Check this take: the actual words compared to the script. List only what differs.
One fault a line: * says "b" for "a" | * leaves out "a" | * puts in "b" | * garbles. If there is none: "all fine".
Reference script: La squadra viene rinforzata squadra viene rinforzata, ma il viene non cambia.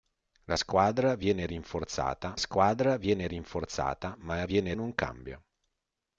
all fine